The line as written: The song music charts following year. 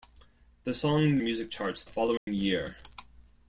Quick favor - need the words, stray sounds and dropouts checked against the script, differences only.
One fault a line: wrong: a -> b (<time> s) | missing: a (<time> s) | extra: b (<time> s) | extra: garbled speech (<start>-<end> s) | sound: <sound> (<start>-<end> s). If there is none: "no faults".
sound: dropout (2.2-2.3 s)